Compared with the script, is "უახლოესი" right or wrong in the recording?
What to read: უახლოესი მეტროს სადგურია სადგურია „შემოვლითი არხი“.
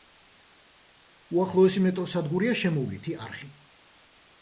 right